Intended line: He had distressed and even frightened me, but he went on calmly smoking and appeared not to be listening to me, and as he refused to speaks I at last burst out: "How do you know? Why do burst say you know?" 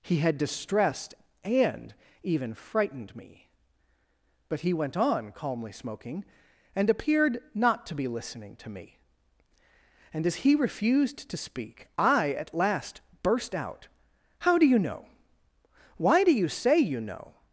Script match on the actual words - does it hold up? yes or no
no